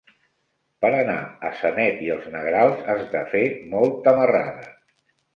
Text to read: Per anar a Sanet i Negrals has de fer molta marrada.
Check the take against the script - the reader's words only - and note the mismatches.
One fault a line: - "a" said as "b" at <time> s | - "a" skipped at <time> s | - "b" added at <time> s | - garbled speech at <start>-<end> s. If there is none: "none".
- "els" added at 2.1 s